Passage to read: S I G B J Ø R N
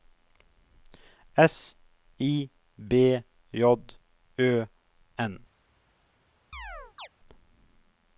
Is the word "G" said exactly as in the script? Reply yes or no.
no